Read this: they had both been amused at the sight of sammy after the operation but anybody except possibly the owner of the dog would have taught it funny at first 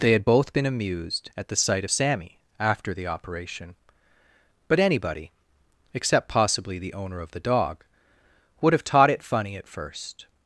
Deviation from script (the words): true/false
false